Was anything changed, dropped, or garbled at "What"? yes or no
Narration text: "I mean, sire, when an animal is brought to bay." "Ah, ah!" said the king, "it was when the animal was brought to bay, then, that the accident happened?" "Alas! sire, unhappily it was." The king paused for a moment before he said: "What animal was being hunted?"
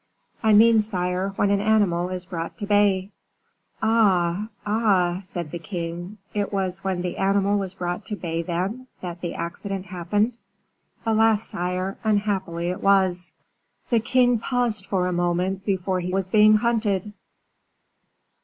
yes